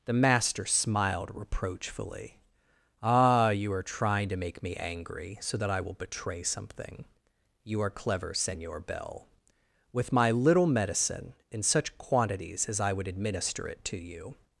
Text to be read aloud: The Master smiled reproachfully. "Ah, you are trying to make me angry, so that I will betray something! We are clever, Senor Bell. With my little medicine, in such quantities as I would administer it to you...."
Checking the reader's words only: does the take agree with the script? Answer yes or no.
no